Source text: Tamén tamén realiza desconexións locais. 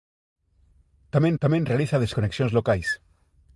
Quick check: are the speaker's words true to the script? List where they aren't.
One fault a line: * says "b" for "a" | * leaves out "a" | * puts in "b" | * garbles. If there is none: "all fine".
all fine